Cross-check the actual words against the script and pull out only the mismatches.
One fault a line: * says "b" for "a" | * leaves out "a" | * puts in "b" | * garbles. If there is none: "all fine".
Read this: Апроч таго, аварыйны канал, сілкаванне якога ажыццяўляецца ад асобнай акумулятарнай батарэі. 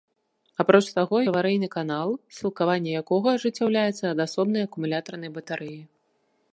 all fine